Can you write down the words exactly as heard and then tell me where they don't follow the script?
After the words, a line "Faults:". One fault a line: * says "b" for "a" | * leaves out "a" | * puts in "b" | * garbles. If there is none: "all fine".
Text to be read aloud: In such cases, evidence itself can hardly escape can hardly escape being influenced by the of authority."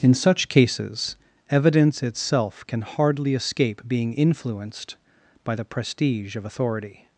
In such cases, evidence itself can hardly escape being influenced by the prestige of authority."
Faults:
* leaves out "can hardly escape"
* puts in "prestige"